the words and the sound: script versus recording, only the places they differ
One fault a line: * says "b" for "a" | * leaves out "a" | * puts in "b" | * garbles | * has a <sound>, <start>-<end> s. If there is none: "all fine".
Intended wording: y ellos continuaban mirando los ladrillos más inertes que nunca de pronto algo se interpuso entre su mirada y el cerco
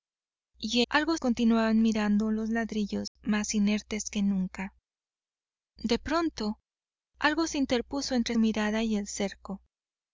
* says "algo" for "ellos"
* has a dropout, 3.1-3.2 s
* leaves out "su"